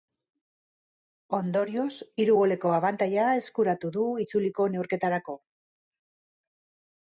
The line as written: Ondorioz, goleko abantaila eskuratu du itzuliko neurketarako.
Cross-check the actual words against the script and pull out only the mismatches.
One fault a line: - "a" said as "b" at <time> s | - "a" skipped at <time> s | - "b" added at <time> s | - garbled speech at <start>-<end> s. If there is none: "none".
- "hiru" added at 2.2 s